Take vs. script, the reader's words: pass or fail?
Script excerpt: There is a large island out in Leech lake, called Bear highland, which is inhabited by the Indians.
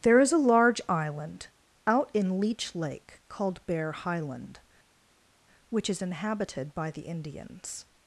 pass